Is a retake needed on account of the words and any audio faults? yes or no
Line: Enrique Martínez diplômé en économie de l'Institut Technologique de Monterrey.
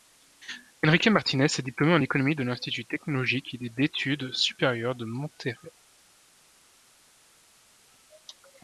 yes